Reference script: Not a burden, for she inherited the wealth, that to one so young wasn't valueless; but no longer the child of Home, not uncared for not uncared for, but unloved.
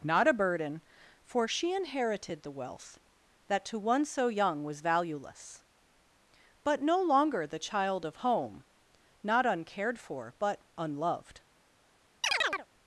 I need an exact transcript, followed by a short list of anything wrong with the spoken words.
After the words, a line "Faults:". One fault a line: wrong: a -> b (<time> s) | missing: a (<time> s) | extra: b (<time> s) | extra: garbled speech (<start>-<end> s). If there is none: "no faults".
Not a burden, for she inherited the wealth, that to one so young was valueless; but no longer the child of Home, not uncared for, but unloved.
Faults:
wrong: wasn't -> was (4.6 s)
missing: not uncared for (10.3 s)